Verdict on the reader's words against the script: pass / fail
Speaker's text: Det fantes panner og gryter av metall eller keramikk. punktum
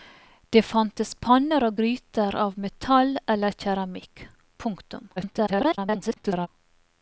fail